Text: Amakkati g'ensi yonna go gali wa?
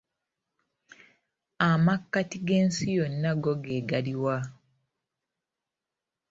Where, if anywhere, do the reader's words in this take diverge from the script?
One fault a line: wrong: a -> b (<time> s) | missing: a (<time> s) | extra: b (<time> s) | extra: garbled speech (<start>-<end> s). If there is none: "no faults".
extra: ge (3.6 s)